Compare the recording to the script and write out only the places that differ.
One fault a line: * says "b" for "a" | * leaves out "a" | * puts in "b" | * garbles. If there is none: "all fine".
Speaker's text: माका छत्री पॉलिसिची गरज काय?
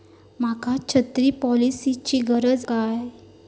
all fine